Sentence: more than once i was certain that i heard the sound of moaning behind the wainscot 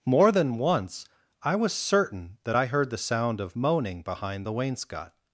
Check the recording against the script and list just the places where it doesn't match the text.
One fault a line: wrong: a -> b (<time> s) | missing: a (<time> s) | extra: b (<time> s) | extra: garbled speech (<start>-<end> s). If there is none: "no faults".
no faults